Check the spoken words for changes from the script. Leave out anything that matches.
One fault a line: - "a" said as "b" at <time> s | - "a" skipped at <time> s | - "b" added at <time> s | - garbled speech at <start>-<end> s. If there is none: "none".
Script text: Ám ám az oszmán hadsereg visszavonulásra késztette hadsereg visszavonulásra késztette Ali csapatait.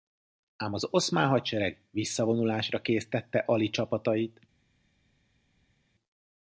- "ám" skipped at 0.7 s
- "hadsereg visszavonulásra késztette" skipped at 3.4 s